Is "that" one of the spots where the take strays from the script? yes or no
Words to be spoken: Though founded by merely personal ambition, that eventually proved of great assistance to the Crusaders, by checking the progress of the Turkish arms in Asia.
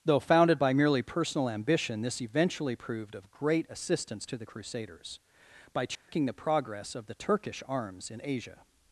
yes